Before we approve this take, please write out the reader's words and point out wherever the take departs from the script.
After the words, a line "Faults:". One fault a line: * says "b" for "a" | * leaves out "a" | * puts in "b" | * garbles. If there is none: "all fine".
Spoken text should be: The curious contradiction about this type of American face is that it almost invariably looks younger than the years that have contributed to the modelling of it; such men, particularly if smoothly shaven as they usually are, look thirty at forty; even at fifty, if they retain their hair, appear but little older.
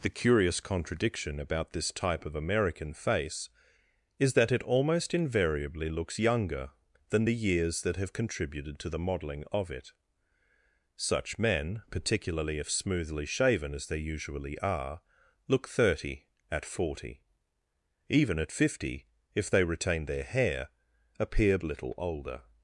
The curious contradiction about this type of American face is that it almost invariably looks younger than the years that have contributed to the modelling of it; such men, particularly if smoothly shaven as they usually are, look thirty at forty; even at fifty, if they retain their hair, appear little older.
Faults:
* leaves out "but"